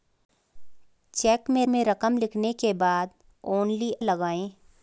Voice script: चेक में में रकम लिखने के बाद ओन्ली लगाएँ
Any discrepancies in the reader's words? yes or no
no